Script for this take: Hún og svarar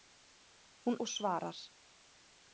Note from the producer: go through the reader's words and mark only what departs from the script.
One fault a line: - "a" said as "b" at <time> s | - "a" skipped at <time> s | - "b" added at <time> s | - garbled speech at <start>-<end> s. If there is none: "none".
none